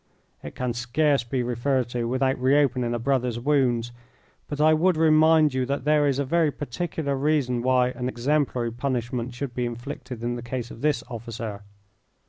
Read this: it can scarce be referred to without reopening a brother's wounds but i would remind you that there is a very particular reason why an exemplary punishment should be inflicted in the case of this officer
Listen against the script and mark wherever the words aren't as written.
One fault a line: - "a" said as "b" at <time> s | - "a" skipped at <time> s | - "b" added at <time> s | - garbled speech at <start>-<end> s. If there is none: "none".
none